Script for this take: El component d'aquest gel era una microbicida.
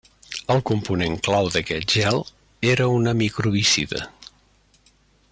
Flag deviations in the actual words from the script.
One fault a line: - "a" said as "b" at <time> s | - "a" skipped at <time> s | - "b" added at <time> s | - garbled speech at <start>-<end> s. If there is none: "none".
- "clau" added at 1.3 s